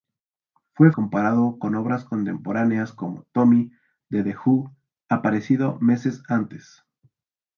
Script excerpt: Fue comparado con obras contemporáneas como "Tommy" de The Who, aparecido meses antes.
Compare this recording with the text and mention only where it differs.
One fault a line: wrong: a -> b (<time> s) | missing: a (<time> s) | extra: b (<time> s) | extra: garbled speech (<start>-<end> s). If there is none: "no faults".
no faults